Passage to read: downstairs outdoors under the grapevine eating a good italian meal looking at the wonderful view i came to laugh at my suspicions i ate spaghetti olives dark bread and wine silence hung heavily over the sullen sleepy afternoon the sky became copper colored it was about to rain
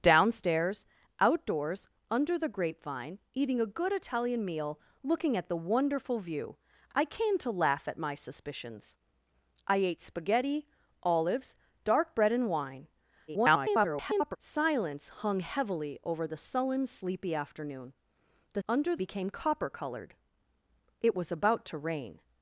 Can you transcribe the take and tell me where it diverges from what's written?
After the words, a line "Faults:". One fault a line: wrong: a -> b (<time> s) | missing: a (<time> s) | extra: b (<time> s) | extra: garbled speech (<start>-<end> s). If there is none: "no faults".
downstairs outdoors under the grapevine eating a good italian meal looking at the wonderful view i came to laugh at my suspicions i ate spaghetti olives dark bread and wine [garbled] silence hung heavily over the sullen sleepy afternoon the under became copper colored it was about to rain
Faults:
extra: garbled speech (13.3-14.4 s)
wrong: sky -> under (18.7 s)